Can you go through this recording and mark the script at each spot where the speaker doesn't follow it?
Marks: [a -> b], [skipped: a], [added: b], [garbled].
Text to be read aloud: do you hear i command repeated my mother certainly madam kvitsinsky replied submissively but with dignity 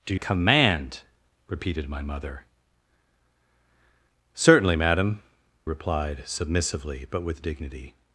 do [skipped: you hear i] command repeated my mother certainly madam [skipped: kvitsinsky] replied submissively but with dignity